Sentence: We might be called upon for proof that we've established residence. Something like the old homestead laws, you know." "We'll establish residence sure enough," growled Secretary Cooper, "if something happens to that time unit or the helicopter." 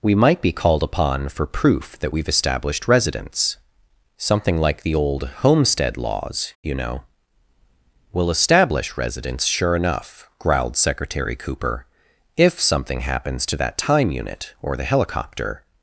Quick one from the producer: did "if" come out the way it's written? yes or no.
yes